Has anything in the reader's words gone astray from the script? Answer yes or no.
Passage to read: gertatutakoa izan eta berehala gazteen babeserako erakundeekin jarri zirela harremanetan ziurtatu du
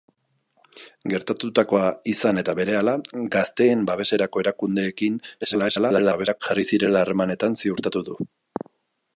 yes